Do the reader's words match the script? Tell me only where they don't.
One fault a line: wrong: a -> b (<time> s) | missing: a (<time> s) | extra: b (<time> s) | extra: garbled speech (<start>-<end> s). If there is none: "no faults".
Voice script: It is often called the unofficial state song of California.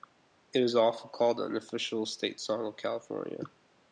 no faults